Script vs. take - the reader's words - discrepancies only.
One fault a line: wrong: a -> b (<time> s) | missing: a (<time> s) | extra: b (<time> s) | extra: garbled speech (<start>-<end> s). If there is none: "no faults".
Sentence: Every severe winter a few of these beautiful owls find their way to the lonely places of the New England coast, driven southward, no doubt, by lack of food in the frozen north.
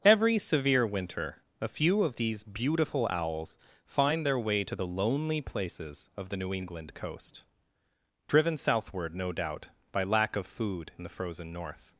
no faults